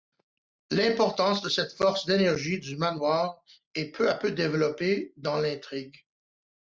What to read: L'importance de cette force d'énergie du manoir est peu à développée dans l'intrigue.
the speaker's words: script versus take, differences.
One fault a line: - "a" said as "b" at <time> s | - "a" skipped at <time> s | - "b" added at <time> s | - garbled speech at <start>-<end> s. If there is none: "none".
- "peu" added at 4.1 s